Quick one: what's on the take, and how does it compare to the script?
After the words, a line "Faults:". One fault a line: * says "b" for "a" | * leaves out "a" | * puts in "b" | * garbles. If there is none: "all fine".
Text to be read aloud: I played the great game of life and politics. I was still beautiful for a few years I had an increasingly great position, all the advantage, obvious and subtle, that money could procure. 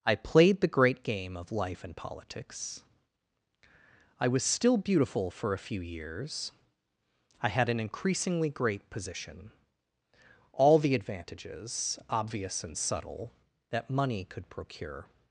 I played the great game of life and politics. I was still beautiful for a few years I had an increasingly great position, all the advantages, obvious and subtle, that money could procure.
Faults:
* says "advantages" for "advantage"